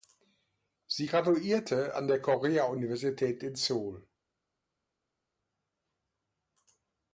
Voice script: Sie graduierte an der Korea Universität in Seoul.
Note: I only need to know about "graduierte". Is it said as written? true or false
true